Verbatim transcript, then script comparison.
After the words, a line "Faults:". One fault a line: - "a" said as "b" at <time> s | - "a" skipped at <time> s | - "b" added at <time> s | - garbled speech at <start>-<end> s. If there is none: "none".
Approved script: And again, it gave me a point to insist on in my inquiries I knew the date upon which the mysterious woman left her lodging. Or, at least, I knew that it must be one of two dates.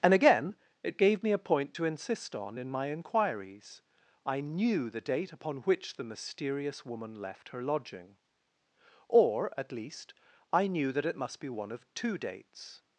And again, it gave me a point to insist on in my inquiries I knew the date upon which the mysterious woman left her lodging. Or, at least, I knew that it must be one of two dates.
Faults:
none